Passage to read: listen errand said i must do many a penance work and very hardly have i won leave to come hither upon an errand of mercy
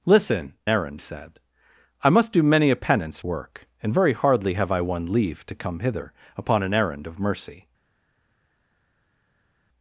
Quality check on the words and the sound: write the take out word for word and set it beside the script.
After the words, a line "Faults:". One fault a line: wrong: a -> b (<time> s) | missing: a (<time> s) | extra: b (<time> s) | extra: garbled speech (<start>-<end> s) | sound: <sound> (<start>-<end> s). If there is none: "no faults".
listen errand said i must do many a penance work and very hardly have i won leave to come hither upon an errand of mercy
Faults:
no faults